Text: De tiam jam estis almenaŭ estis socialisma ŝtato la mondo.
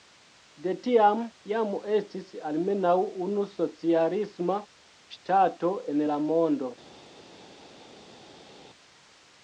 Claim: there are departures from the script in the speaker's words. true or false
true